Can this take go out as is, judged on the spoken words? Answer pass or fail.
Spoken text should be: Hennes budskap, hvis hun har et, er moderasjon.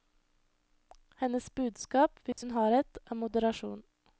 pass